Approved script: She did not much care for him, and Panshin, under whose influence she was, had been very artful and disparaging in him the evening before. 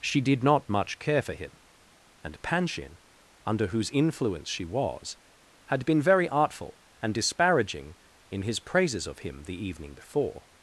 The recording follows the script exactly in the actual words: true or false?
false